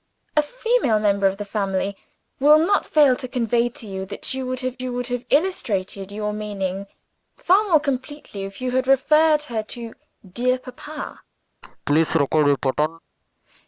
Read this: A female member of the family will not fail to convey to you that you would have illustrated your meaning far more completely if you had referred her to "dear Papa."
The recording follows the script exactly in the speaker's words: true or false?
false